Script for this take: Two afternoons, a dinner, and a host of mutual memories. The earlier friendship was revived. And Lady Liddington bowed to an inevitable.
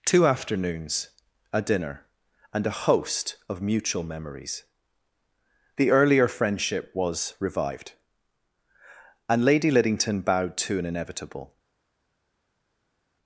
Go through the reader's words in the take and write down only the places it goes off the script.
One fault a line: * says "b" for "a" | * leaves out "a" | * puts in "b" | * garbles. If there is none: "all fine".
all fine